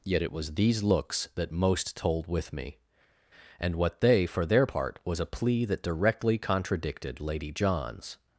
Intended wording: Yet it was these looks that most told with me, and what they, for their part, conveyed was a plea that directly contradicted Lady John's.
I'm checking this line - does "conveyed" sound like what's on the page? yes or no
no